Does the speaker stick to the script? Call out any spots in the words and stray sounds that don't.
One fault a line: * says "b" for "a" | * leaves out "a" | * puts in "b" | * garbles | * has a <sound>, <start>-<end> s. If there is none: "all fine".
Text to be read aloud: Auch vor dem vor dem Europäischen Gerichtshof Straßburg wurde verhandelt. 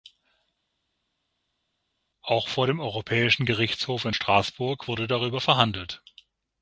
* leaves out "vor dem"
* puts in "in"
* puts in "darüber"